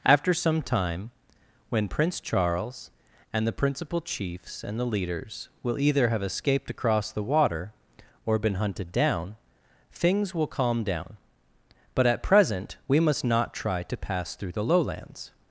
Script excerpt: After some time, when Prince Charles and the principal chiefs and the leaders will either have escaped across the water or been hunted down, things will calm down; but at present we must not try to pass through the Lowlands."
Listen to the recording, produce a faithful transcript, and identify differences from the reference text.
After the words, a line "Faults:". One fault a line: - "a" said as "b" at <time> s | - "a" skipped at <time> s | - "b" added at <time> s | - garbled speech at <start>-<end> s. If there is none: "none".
After some time, when Prince Charles and the principal chiefs and the leaders will either have escaped across the water or been hunted down, things will calm down; but at present we must not try to pass through the Lowlands."
Faults:
none